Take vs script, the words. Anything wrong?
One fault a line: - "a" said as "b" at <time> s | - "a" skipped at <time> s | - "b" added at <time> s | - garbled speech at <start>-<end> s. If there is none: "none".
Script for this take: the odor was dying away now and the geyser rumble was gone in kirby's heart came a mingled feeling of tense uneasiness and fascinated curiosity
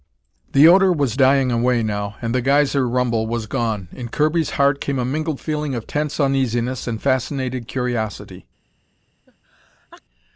none